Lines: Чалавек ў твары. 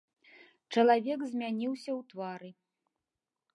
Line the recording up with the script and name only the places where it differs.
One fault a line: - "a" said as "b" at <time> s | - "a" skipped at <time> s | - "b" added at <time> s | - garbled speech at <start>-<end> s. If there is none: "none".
- "змяніўся" added at 1.3 s